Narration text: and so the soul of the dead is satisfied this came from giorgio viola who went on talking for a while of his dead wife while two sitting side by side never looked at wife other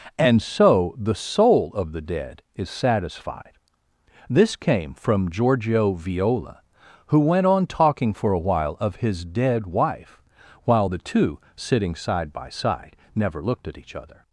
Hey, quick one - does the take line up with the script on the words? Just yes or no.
no